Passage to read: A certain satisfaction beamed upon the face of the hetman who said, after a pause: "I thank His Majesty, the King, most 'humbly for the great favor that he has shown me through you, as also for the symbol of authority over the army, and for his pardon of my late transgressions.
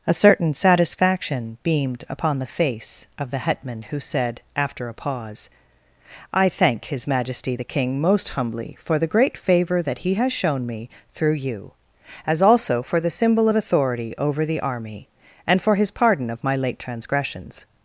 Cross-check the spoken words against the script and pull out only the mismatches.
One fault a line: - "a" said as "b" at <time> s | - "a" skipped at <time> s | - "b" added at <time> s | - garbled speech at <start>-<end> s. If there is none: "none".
none